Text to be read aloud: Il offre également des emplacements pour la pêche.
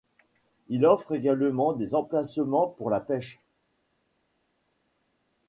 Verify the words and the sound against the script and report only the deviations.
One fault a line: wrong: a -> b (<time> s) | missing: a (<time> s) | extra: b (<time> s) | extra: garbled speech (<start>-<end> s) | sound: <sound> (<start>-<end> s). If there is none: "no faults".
no faults